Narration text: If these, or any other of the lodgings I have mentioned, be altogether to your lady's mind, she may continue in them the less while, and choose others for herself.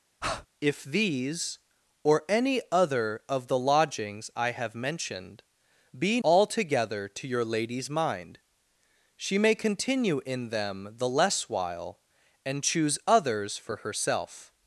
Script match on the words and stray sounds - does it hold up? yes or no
no